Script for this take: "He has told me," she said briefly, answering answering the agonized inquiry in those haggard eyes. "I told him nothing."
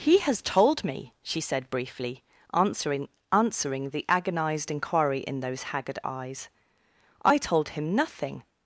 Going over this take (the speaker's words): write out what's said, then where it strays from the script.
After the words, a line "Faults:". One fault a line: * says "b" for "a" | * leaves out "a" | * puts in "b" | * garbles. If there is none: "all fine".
"He has told me," she said briefly, answering answering the agonized inquiry in those haggard eyes. "I told him nothing."
Faults:
all fine